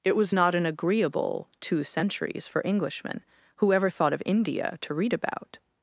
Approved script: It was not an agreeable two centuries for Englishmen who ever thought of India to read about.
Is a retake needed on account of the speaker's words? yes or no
no